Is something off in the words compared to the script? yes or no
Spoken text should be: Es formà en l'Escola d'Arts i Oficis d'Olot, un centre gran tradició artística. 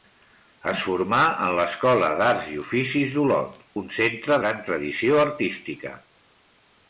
no